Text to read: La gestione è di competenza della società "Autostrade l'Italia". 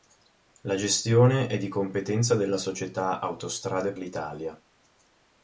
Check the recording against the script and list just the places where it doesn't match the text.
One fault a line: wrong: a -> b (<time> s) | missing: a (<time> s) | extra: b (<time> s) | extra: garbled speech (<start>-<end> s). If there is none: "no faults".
no faults